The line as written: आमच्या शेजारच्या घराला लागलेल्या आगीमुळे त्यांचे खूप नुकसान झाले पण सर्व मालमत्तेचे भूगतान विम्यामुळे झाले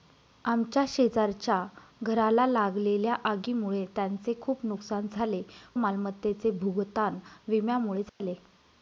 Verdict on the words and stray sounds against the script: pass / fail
fail